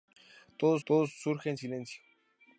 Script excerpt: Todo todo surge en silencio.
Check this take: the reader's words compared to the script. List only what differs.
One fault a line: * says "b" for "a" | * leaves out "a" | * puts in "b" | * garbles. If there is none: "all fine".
all fine